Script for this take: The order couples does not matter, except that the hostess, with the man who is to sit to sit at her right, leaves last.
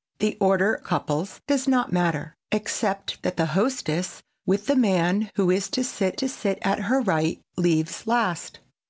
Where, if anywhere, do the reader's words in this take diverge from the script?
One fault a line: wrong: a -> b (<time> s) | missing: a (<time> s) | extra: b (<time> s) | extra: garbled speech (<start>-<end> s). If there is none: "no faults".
no faults